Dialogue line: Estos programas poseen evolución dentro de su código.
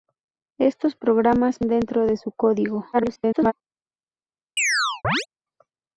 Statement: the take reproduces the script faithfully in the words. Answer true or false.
false